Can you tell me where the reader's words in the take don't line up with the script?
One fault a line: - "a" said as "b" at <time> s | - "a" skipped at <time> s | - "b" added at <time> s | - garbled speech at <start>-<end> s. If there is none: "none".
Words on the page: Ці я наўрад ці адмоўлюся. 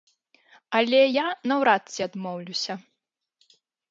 - "Ці" said as "Але" at 0.8 s